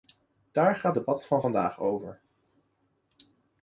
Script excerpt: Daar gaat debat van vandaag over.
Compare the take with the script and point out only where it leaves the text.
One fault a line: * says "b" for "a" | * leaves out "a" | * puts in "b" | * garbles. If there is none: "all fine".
all fine